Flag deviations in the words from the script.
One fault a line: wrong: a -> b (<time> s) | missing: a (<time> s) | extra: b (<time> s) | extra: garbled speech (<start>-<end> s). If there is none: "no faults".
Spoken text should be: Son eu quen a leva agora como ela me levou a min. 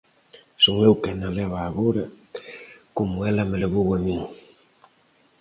no faults